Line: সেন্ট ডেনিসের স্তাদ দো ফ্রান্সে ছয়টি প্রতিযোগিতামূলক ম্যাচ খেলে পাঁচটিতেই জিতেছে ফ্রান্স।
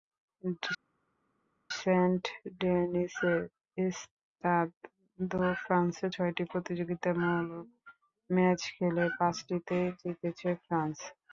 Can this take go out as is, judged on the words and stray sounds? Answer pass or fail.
pass